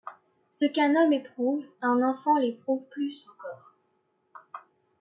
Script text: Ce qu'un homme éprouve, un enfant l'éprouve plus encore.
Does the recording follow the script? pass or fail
pass